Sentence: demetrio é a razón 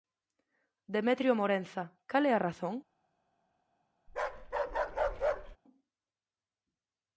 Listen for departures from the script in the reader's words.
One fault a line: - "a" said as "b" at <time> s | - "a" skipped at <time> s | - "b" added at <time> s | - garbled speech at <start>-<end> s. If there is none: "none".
- "morenza cal" added at 1.4 s